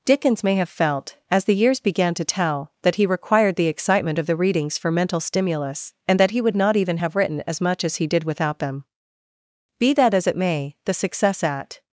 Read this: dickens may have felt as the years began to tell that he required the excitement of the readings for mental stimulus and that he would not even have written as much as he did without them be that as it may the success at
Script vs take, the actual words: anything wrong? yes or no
no